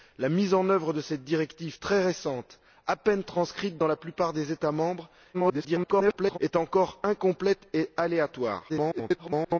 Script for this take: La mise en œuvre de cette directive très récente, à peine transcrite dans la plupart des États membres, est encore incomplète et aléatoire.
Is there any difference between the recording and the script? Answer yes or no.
yes